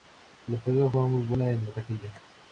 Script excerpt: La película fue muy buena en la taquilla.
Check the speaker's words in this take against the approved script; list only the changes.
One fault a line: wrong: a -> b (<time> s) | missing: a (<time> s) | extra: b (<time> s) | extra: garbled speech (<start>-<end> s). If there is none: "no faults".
no faults